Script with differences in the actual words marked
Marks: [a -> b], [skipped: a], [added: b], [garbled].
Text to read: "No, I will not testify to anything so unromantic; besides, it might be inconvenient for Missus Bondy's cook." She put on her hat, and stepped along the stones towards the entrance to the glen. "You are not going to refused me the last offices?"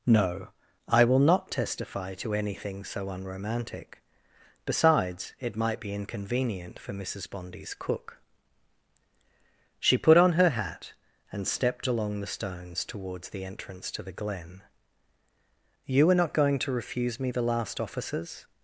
"No, I will not testify to anything so unromantic; besides, it might be inconvenient for Missus Bondy's cook." She put on her hat, and stepped along the stones towards the entrance to the glen. "You are not going to [refused -> refuse] me the last offices?"